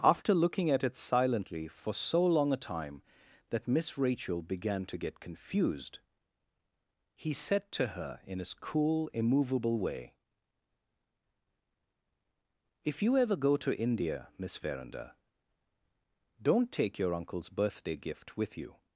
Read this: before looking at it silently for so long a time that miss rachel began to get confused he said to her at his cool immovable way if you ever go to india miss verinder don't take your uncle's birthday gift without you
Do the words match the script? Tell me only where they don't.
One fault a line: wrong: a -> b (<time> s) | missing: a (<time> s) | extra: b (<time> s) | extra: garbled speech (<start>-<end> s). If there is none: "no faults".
wrong: before -> after (0.0 s)
wrong: at -> in (8.2 s)
wrong: without -> with (18.4 s)